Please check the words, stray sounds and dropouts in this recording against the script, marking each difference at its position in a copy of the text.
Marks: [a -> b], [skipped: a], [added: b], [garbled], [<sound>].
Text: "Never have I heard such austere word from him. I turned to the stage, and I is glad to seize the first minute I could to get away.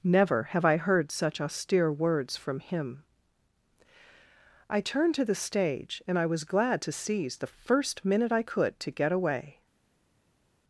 "Never have I heard such austere [word -> words] from him. I turned to the stage, and I [is -> was] glad to seize the first minute I could to get away.